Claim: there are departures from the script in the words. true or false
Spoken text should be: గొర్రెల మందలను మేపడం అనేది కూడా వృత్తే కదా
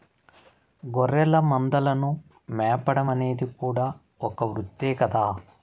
true